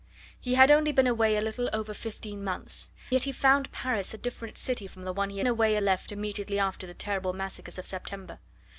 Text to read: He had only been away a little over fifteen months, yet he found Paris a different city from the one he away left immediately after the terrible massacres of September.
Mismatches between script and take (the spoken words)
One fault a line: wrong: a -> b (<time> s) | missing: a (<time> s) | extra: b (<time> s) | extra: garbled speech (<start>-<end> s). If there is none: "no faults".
no faults